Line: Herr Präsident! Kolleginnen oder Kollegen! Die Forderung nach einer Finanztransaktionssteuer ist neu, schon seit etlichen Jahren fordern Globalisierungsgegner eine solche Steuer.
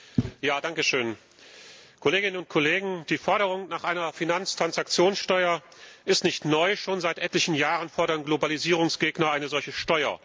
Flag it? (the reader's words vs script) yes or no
yes